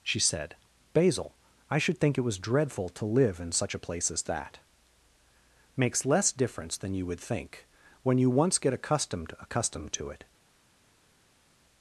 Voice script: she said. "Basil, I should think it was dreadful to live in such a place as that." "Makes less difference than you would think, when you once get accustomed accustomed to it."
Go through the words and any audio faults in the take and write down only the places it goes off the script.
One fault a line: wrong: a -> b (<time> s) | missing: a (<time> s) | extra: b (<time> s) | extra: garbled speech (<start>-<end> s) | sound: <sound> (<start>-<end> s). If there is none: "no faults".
no faults